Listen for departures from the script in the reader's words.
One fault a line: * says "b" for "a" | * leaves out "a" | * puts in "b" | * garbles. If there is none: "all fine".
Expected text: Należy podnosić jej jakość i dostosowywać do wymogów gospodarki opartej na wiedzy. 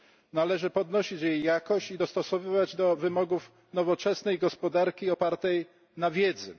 * puts in "nowoczesnej"